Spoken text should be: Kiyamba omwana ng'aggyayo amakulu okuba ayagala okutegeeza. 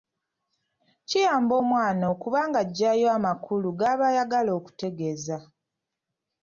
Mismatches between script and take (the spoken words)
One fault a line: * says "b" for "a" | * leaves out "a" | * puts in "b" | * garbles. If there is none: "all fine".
* puts in "okuba"
* says "g'aba" for "okuba"